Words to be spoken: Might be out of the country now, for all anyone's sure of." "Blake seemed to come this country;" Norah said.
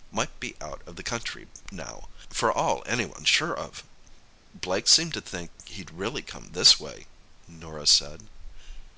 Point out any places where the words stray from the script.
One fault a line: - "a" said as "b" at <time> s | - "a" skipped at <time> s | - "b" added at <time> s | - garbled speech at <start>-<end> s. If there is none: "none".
- "think he'd really" added at 5.2 s
- "country" said as "way" at 6.8 s